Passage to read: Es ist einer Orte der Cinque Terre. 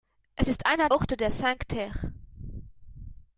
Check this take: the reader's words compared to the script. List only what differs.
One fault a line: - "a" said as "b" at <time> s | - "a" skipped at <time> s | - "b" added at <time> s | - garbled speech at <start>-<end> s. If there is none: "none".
none